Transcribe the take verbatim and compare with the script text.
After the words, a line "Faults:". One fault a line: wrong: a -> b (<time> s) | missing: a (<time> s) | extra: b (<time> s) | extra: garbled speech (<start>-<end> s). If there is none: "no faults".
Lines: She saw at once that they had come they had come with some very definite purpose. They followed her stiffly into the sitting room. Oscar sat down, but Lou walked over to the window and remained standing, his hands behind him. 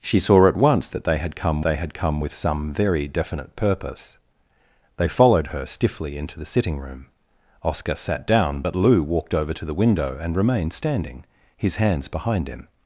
She saw at once that they had come they had come with some very definite purpose. They followed her stiffly into the sitting room. Oscar sat down, but Lou walked over to the window and remained standing, his hands behind him.
Faults:
no faults